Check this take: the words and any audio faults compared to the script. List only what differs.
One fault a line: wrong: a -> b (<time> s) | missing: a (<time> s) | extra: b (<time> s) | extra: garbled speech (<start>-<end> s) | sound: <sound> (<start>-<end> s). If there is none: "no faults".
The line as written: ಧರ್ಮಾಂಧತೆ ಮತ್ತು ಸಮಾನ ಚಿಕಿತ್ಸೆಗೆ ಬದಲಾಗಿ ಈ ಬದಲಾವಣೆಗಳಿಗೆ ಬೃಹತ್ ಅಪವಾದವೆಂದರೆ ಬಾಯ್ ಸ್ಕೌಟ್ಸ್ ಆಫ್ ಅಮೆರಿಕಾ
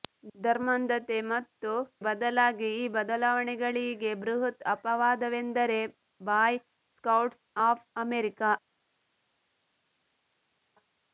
missing: ಸಮಾನ ಚಿಕಿತ್ಸೆಗೆ (1.7 s)